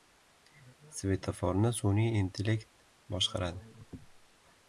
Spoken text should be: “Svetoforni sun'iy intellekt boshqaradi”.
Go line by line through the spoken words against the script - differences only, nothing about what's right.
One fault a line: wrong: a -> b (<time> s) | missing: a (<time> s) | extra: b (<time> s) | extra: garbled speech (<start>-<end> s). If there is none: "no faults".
no faults